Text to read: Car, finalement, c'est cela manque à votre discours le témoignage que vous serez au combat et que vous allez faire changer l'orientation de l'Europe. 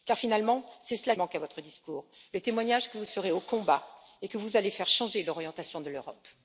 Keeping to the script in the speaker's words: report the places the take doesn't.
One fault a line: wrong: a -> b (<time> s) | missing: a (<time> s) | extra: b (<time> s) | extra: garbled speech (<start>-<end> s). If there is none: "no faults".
no faults